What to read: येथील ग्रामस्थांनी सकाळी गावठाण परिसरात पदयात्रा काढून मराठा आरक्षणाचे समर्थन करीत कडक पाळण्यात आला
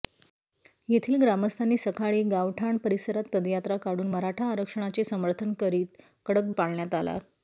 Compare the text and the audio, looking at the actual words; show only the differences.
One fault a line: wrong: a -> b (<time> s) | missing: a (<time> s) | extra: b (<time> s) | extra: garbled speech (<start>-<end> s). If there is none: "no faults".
no faults